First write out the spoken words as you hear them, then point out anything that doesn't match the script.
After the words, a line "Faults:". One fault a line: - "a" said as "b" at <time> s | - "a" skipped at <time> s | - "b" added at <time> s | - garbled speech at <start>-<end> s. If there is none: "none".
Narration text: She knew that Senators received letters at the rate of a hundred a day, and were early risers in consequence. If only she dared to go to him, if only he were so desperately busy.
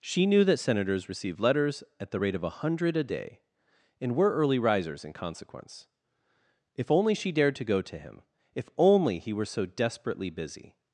She knew that Senators received letters at the rate of a hundred a day, and were early risers in consequence. If only she dared to go to him, if only he were so desperately busy.
Faults:
none